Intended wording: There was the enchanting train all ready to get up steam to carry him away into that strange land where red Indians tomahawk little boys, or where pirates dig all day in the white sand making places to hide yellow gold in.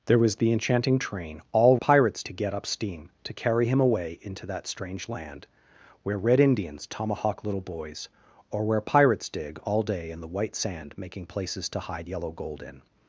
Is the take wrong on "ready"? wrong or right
wrong